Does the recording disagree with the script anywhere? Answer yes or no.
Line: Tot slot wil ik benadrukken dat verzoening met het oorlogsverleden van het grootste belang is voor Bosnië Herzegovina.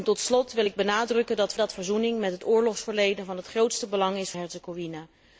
yes